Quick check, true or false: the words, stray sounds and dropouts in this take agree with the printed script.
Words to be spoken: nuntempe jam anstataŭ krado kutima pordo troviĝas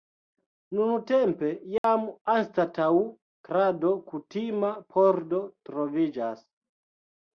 false